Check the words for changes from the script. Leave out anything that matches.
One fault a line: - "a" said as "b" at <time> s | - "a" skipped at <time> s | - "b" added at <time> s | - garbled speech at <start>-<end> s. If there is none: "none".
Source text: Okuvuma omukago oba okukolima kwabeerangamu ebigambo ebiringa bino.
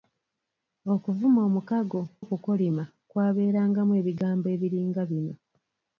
- "oba" skipped at 2.0 s